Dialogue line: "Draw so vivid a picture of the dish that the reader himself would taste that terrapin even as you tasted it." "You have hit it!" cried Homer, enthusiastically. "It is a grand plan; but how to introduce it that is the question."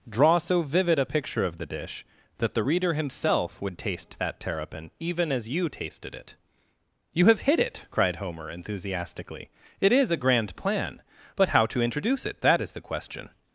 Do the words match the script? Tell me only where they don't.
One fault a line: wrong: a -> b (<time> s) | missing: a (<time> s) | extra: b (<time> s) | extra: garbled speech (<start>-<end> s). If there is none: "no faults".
no faults